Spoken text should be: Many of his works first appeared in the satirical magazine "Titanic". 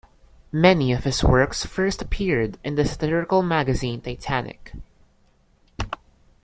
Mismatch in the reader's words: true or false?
false